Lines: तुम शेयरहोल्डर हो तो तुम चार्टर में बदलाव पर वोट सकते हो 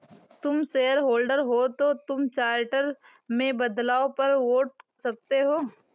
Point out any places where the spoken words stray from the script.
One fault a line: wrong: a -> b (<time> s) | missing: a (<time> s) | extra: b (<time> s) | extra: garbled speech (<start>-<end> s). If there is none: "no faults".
no faults